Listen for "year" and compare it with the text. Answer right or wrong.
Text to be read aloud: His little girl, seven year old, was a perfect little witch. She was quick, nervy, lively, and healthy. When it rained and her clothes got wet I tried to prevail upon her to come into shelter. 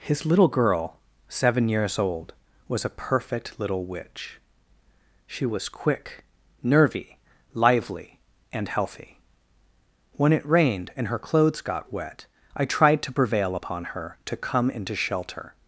wrong